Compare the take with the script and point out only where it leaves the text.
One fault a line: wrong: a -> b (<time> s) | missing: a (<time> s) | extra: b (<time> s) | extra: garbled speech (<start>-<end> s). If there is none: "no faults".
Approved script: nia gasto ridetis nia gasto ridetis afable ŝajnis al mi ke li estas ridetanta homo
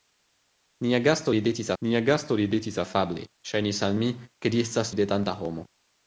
no faults